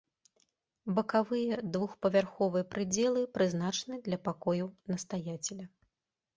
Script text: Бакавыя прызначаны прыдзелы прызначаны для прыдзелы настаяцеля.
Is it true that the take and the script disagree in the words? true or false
true